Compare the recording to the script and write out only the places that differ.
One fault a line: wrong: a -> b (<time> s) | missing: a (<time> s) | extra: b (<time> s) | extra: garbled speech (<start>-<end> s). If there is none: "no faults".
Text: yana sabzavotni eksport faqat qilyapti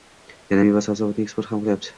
extra: meva (0.7 s)
wrong: faqat -> ham (1.5 s)